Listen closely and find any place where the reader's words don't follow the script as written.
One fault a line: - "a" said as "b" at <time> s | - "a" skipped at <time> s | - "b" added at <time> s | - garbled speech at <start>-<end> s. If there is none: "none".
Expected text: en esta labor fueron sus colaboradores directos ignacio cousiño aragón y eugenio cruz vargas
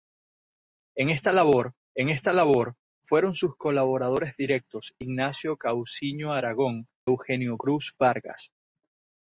- "en esta labor" added at 1.9 s
- "y" skipped at 6.9 s